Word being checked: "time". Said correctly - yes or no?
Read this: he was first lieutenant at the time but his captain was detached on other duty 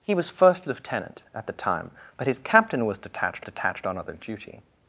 yes